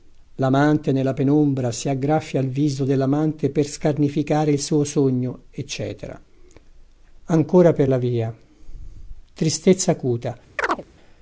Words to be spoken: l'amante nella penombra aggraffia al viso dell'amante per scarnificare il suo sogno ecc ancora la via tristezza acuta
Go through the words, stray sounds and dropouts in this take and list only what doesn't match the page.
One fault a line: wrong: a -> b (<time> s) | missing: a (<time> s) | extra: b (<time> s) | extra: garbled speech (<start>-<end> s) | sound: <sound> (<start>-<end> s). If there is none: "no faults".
extra: si (1.7 s)
extra: per (7.7 s)
sound: chirp (10.6-10.8 s)